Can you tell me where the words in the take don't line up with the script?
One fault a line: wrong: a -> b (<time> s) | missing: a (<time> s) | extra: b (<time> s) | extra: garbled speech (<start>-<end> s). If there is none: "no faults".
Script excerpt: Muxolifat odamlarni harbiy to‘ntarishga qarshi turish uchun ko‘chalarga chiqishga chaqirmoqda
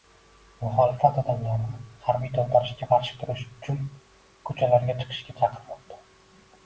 no faults